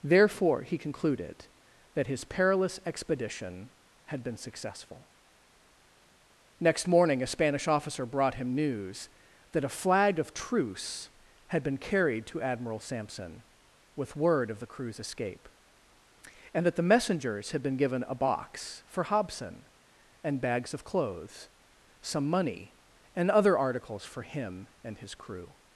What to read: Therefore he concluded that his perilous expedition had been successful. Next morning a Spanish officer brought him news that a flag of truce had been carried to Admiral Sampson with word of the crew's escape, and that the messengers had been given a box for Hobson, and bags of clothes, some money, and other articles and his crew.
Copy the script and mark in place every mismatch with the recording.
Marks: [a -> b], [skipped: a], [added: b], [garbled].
Therefore he concluded that his perilous expedition had been successful. Next morning a Spanish officer brought him news that a flag of truce had been carried to Admiral Sampson with word of the crew's escape, and that the messengers had been given a box for Hobson, and bags of clothes, some money, and other articles [added: for him] and his crew.